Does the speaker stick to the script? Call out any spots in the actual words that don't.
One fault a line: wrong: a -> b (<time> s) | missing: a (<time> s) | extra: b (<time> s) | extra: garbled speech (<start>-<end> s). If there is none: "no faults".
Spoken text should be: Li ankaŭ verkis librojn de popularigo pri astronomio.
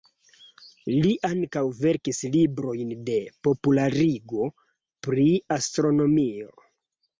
no faults